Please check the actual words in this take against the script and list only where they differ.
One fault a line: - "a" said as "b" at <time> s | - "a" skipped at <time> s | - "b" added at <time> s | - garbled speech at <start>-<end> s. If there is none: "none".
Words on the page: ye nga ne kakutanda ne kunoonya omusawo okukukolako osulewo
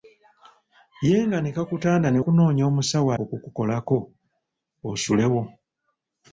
none